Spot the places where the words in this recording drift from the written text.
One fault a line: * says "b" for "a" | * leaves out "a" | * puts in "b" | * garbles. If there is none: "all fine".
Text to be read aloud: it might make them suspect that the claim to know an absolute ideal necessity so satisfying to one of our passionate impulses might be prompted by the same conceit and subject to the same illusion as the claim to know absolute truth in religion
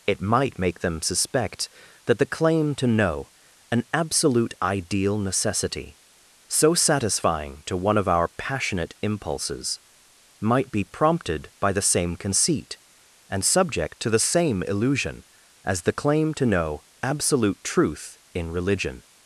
all fine